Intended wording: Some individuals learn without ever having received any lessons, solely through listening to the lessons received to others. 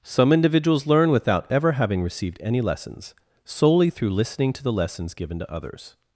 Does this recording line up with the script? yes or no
no